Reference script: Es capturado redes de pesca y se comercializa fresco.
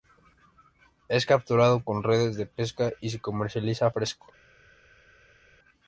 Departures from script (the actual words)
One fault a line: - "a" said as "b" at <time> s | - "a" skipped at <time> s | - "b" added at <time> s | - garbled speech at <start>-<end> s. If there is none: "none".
- "con" added at 1.8 s